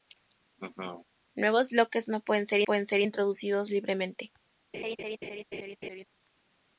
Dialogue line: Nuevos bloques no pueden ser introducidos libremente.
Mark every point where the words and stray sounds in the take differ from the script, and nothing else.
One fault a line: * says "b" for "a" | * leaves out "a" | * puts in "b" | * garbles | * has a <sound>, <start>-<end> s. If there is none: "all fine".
* has a laugh, 0.6-1.1 s
* puts in "pueden ser"
* has a laugh, 4.7-6.0 s